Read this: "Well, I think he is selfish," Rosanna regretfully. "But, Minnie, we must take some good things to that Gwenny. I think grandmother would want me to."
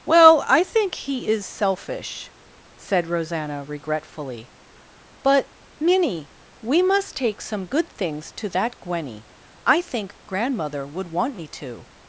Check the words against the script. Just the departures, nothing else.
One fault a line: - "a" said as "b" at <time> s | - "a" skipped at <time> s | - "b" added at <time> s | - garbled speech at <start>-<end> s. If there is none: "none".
- "said" added at 2.8 s